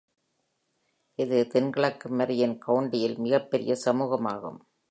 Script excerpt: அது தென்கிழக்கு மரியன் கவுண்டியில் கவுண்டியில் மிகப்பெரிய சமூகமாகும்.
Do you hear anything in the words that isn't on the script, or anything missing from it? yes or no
yes